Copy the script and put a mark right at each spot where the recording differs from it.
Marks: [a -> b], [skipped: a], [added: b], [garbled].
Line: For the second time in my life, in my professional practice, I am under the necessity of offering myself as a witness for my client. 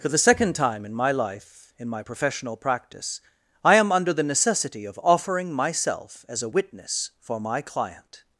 For the second time in my life, in my professional practice, I am under the necessity of offering myself as a witness for my client.